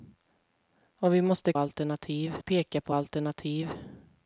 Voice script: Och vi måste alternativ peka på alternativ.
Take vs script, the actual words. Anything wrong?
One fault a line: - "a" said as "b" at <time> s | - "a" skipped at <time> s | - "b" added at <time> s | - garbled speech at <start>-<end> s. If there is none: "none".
none